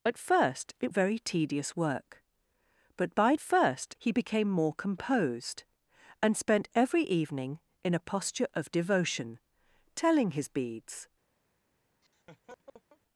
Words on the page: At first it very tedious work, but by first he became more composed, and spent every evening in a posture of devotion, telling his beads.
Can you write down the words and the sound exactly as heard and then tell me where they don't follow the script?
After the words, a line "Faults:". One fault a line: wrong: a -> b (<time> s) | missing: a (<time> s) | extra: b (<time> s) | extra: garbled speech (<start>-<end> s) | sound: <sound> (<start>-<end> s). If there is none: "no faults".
At first it very tedious work, but by first he became more composed, and spent every evening in a posture of devotion, telling his beads.
Faults:
sound: laugh (12.0-13.0 s)